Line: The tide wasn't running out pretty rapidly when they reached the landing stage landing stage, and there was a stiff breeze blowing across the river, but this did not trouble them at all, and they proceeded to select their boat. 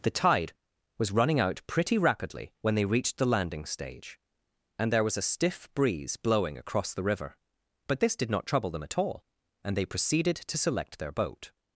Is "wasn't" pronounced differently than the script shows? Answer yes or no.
yes